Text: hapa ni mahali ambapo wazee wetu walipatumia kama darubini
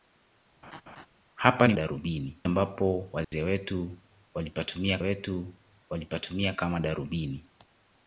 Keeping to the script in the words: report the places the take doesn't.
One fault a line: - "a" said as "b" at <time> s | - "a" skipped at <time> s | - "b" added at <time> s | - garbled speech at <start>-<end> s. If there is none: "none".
- "mahali" said as "darubini" at 1.7 s
- "wetu walipatumia" added at 5.0 s